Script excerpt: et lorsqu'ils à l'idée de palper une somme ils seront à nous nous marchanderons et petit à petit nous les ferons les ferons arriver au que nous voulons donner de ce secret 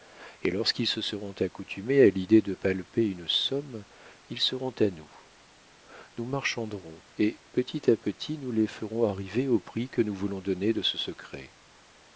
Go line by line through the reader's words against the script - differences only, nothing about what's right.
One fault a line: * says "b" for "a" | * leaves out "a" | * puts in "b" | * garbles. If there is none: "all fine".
* puts in "se seront accoutumés"
* leaves out "les ferons"
* puts in "prix"